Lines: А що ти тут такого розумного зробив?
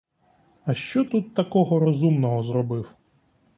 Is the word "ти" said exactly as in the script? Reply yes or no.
no